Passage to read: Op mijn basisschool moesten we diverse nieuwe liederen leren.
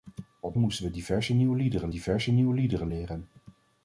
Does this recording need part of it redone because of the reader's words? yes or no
yes